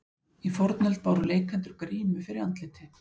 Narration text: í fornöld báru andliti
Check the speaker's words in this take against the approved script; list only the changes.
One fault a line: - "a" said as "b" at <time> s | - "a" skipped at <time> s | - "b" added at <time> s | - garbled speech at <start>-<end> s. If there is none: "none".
- "leikendur grímu fyrir" added at 1.3 s